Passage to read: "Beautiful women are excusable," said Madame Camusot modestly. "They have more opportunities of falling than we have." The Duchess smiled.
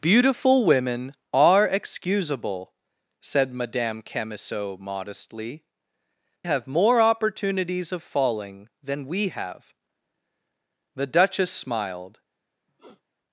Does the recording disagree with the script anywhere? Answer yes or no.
yes